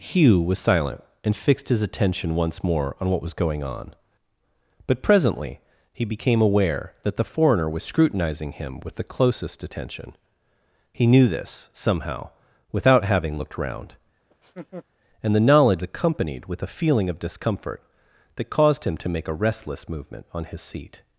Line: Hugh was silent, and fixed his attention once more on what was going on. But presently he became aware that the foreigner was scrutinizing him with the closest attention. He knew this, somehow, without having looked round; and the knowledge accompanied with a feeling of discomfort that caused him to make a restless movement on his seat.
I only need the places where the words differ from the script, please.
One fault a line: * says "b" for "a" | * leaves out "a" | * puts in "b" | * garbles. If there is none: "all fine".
all fine